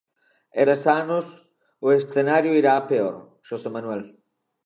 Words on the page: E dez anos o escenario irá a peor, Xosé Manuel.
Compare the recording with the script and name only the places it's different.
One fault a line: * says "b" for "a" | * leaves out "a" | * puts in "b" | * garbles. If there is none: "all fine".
all fine